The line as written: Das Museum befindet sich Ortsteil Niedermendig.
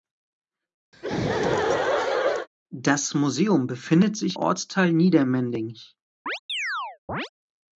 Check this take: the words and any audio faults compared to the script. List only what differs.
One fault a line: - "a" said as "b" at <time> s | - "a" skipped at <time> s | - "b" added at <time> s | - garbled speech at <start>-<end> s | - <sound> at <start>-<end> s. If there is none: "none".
- laugh at 0.9-2.5 s
- chirp at 6.3-7.3 s